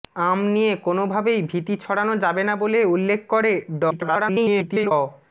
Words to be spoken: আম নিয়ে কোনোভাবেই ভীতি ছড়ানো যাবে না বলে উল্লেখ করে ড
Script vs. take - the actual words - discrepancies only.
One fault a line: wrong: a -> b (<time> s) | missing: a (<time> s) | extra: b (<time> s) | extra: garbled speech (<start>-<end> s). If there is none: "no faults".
extra: garbled speech (3.9-4.9 s)